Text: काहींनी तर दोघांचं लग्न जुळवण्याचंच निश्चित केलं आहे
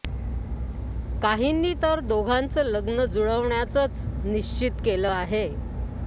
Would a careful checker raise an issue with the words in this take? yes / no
no